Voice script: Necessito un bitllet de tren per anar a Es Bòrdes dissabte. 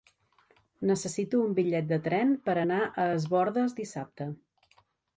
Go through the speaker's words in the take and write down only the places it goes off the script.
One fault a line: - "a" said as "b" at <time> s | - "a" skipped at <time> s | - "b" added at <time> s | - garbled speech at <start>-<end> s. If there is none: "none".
none